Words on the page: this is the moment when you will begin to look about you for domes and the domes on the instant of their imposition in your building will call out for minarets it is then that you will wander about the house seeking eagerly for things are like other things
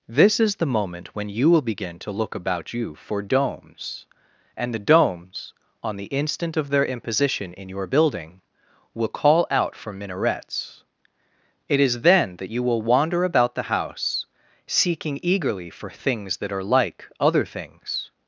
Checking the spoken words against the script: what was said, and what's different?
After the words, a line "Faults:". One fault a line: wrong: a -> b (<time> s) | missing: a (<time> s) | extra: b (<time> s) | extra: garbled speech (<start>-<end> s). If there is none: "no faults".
this is the moment when you will begin to look about you for domes and the domes on the instant of their imposition in your building will call out for minarets it is then that you will wander about the house seeking eagerly for things that are like other things
Faults:
extra: that (16.4 s)